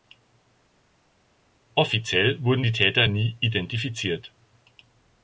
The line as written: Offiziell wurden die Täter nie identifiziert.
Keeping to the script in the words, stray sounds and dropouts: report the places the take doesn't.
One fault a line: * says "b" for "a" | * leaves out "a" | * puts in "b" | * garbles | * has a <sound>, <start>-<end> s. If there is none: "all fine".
all fine